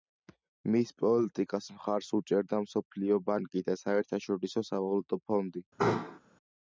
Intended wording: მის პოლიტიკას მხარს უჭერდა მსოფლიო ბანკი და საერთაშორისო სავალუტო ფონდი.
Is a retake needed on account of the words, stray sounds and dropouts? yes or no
yes